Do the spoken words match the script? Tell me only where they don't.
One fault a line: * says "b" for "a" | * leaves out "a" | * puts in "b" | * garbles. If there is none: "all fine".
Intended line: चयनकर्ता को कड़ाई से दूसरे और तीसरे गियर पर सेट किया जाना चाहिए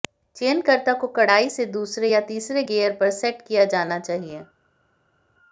* says "या" for "और"